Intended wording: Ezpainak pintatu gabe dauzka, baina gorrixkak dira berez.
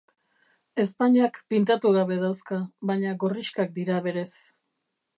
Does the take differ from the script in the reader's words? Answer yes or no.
no